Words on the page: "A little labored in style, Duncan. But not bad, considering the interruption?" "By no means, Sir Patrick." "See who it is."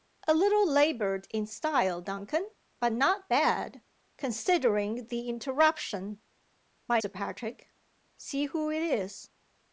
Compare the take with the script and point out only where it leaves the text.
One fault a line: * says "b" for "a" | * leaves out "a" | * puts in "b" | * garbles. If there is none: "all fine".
* leaves out "no means"